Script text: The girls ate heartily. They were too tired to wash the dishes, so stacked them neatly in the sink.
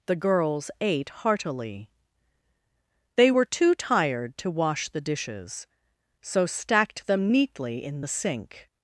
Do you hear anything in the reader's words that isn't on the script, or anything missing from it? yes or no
no